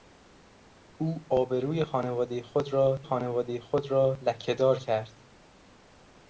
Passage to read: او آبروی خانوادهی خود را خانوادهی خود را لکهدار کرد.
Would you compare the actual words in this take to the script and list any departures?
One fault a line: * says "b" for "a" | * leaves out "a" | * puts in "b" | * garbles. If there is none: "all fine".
all fine